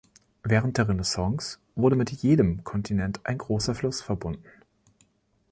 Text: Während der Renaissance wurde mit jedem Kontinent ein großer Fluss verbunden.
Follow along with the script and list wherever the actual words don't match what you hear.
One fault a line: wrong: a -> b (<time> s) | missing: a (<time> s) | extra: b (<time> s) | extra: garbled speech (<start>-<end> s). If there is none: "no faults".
no faults